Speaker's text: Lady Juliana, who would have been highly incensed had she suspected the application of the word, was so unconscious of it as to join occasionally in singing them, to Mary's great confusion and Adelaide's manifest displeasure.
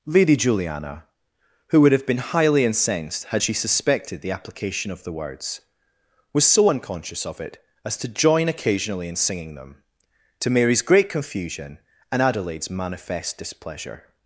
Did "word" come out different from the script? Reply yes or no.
yes